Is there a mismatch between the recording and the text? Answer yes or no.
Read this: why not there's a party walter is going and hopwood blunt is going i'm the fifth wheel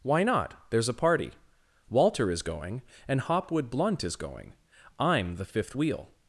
no